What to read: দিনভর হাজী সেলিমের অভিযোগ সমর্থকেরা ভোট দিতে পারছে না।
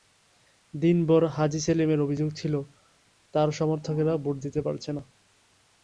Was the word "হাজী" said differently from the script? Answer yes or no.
no